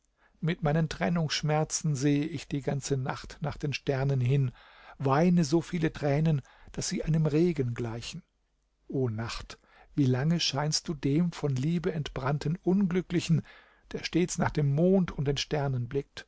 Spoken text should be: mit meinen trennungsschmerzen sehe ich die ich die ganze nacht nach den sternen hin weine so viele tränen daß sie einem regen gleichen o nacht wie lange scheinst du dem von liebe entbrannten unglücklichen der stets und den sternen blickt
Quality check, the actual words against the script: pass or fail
fail